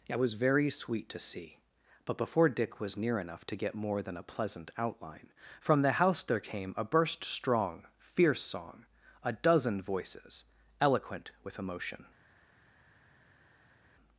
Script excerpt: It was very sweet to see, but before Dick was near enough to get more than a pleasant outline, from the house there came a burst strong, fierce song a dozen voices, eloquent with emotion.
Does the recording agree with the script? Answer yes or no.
yes